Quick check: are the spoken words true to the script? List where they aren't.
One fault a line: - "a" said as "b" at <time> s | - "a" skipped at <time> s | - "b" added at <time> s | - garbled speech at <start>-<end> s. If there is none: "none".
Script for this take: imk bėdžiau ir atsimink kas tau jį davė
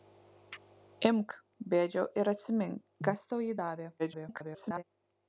- garbled speech at 4.0-4.8 s